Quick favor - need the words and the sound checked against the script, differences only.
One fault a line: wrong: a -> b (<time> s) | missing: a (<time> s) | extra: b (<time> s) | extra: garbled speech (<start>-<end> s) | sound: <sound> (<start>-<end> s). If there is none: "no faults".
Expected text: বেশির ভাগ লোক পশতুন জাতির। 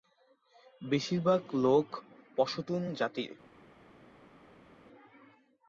no faults